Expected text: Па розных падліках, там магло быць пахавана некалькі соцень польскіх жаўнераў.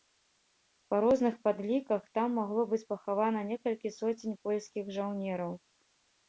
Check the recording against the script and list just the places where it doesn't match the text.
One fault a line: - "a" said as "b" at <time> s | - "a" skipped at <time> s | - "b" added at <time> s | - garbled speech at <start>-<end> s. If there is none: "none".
none